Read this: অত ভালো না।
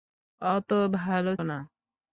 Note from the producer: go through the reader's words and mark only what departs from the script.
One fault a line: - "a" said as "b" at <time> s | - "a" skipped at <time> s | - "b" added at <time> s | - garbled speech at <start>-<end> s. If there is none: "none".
none